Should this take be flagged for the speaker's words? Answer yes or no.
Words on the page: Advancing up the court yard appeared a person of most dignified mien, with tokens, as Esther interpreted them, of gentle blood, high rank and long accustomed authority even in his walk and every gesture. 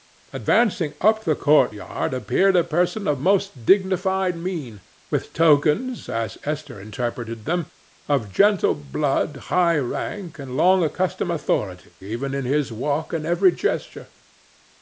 no